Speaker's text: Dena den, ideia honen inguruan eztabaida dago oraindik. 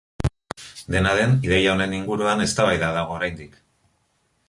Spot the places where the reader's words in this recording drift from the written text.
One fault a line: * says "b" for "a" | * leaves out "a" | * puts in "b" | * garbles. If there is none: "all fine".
all fine